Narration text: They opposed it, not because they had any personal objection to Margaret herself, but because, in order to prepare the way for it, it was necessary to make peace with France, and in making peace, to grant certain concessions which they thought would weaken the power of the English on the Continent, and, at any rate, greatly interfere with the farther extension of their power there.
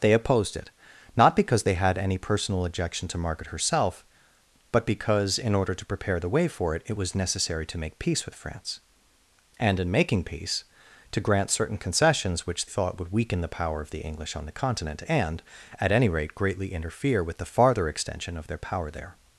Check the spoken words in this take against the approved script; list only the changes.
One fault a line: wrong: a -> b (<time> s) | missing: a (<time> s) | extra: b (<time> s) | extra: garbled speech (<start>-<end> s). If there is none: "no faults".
missing: they (12.7 s)